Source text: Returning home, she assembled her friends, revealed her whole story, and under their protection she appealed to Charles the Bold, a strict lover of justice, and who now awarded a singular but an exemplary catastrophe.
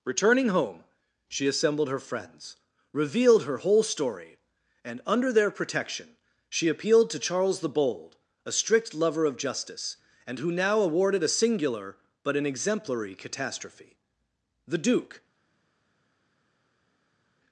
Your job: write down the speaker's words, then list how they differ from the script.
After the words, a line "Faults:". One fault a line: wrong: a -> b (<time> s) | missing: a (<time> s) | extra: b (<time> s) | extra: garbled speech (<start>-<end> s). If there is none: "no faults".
Returning home, she assembled her friends, revealed her whole story, and under their protection she appealed to Charles the Bold, a strict lover of justice, and who now awarded a singular but an exemplary catastrophe. The duke
Faults:
extra: The duke (14.7 s)